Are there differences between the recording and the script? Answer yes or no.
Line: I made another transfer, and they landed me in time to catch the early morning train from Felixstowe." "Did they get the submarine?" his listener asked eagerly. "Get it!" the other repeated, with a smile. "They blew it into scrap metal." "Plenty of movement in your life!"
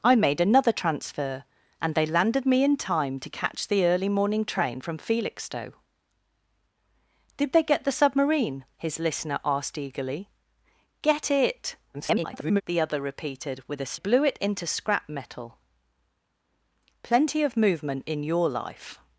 yes